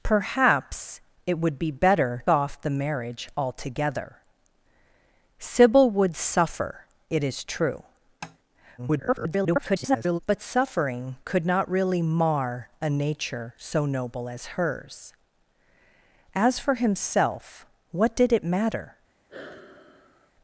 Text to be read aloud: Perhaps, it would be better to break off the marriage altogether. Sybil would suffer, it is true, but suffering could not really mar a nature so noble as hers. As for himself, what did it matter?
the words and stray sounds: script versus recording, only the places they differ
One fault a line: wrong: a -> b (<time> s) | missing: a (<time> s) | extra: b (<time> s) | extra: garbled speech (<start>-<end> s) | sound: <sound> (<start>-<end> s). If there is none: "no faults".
missing: to break (2.2 s)
sound: tap (8.2-8.4 s)
extra: garbled speech (8.8-10.2 s)
sound: sigh (19.3-20.3 s)